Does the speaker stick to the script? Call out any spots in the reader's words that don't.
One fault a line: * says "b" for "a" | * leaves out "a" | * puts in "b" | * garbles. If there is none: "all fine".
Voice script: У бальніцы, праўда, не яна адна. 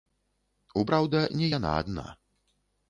* leaves out "бальніцы"